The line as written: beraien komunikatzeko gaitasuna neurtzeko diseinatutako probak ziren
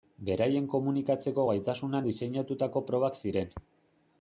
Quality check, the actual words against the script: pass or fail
fail